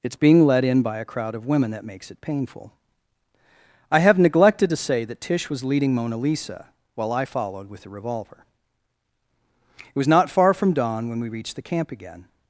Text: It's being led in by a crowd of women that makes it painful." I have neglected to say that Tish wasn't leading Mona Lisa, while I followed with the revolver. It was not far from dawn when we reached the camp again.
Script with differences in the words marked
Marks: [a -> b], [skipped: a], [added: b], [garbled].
It's being led in by a crowd of women that makes it painful." I have neglected to say that Tish [wasn't -> was] leading Mona Lisa, while I followed with the revolver. It was not far from dawn when we reached the camp again.